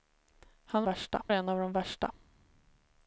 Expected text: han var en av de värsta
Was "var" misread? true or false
true